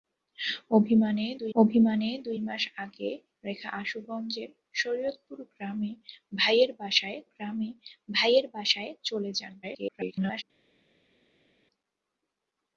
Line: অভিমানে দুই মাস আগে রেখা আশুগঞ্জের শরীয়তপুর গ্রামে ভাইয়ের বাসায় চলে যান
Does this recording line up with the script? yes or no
no